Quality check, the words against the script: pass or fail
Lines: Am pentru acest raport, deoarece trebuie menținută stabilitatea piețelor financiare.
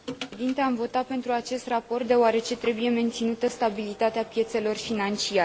fail